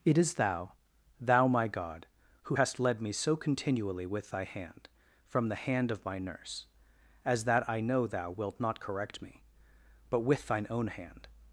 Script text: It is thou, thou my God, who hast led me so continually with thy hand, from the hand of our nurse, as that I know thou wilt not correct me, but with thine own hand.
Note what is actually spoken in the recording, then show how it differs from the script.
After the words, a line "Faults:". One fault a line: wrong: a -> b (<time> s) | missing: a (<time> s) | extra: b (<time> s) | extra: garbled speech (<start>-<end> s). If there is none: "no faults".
It is thou, thou my God, who hast led me so continually with thy hand, from the hand of my nurse, as that I know thou wilt not correct me, but with thine own hand.
Faults:
wrong: our -> my (6.0 s)